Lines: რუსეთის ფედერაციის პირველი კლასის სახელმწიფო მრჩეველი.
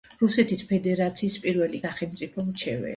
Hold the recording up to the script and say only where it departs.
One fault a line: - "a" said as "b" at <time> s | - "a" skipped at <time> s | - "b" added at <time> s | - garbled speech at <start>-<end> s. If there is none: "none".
- "კლასის" skipped at 1.8 s